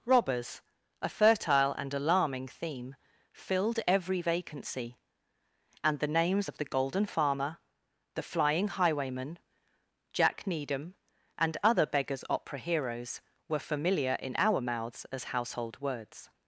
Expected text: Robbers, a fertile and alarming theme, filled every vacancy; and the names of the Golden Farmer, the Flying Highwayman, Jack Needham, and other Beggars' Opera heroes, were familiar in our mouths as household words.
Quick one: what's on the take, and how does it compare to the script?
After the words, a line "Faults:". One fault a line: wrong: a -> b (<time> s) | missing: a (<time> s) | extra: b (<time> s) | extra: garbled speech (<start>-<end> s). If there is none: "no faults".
Robbers, a fertile and alarming theme, filled every vacancy; and the names of the Golden Farmer, the Flying Highwayman, Jack Needham, and other Beggars' Opera heroes, were familiar in our mouths as household words.
Faults:
no faults